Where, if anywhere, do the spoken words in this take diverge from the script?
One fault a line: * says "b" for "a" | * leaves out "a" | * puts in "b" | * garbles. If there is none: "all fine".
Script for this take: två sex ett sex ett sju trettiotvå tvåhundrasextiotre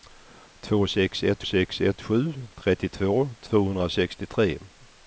all fine